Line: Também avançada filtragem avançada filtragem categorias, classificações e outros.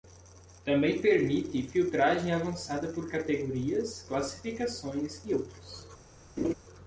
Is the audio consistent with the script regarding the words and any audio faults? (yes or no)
no